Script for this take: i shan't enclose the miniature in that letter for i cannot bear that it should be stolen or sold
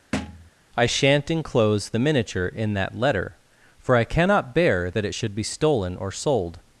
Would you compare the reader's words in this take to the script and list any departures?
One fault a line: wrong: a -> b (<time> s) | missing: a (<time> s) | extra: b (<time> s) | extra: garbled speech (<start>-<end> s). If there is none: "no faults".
no faults